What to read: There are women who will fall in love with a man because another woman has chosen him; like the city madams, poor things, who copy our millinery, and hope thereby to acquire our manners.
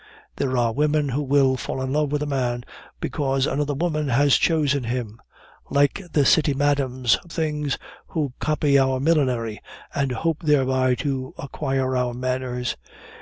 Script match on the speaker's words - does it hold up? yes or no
no